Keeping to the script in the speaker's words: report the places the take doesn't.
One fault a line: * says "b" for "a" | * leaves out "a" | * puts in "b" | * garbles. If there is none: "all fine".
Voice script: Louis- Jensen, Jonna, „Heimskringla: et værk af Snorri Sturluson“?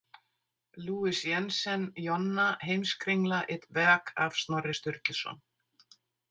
all fine